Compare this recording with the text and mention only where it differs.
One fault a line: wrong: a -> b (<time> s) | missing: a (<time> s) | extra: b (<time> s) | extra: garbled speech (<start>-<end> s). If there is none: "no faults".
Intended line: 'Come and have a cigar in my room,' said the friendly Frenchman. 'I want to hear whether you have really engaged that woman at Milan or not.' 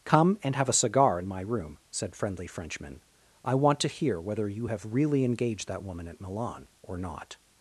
missing: the (2.1 s)